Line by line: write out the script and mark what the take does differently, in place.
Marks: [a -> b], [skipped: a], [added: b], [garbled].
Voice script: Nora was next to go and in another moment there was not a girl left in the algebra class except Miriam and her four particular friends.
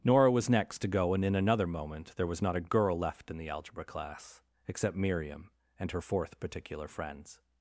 Nora was next to go and in another moment there was not a girl left in the algebra class except Miriam and her [four -> fourth] particular friends.